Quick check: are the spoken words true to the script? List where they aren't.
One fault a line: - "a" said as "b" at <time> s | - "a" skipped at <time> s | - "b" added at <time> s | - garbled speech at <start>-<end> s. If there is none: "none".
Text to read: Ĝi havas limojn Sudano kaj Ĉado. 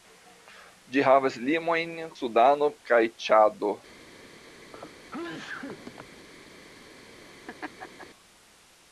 none